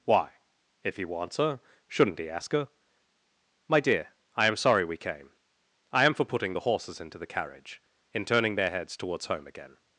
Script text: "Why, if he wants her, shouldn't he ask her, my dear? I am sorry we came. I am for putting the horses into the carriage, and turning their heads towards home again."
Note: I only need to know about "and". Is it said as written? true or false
false